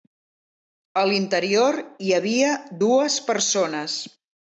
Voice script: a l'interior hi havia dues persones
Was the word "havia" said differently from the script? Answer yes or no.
no